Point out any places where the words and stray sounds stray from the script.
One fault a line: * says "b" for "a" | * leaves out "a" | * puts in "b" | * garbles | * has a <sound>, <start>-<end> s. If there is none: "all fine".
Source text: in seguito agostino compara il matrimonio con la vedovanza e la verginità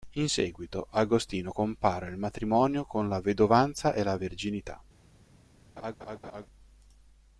* has a laugh, 5.8-6.5 s